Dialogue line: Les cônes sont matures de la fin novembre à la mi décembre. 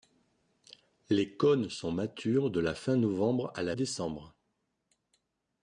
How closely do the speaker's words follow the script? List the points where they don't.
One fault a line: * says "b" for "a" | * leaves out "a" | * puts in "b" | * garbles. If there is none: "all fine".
* leaves out "mi"